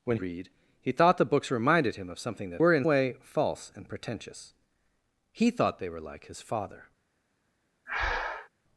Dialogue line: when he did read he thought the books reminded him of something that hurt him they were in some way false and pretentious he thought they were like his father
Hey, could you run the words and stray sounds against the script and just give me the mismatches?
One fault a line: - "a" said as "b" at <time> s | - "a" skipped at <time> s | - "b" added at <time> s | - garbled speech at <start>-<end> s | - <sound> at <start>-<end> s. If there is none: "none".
- "he did" skipped at 0.2 s
- "hurt him they" skipped at 2.6 s
- "some" skipped at 2.9 s
- breath at 7.9-8.5 s